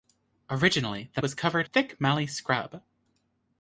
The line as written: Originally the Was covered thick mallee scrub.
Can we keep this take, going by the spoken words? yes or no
yes